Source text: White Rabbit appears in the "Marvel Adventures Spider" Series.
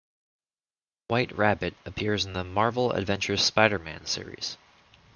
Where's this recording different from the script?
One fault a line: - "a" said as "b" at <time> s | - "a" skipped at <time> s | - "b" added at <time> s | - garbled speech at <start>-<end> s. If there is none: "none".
- "Man" added at 3.8 s